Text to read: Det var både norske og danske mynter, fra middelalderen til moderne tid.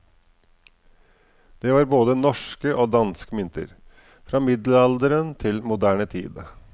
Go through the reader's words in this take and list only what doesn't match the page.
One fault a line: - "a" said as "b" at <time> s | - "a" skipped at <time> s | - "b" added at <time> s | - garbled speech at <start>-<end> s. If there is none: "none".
none